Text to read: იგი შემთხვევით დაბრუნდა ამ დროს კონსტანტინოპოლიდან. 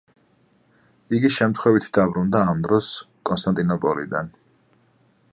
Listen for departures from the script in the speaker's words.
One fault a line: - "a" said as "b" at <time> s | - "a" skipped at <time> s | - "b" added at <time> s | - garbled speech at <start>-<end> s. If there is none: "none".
none